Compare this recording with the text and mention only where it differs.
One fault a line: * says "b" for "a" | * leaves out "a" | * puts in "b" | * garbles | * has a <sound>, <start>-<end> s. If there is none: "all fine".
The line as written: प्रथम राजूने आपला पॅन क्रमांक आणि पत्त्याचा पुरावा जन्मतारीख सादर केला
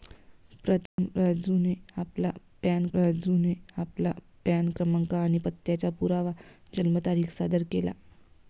* has a dropout, 0.9-1.0 s
* puts in "राजूने आपला पॅन"